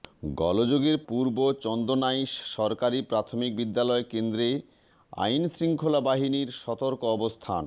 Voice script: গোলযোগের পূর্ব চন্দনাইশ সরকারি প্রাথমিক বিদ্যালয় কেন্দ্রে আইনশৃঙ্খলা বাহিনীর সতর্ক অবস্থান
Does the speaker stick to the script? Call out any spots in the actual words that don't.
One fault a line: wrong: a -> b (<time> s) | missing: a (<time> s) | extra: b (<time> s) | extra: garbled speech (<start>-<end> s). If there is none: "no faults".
no faults